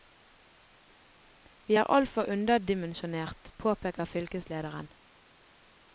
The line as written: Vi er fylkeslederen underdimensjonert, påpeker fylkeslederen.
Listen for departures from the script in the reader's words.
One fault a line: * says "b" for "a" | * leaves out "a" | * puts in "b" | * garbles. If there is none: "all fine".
* says "altfor" for "fylkeslederen"